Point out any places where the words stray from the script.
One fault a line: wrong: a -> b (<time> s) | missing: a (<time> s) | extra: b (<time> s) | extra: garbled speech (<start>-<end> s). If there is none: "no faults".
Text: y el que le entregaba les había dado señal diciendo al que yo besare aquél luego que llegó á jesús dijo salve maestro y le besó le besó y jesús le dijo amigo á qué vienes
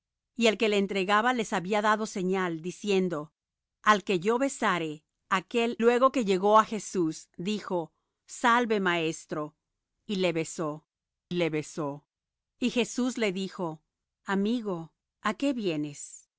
no faults